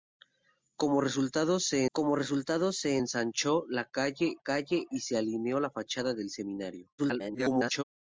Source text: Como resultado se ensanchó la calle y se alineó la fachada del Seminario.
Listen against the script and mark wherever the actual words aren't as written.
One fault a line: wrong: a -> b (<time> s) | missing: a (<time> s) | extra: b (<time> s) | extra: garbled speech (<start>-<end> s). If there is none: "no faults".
extra: como resultado se (1.9 s)
extra: calle (4.4 s)
extra: garbled speech (7.0-7.8 s)